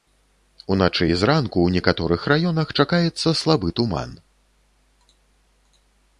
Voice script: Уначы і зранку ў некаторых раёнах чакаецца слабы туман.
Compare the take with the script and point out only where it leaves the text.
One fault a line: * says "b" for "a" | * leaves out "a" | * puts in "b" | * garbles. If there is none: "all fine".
all fine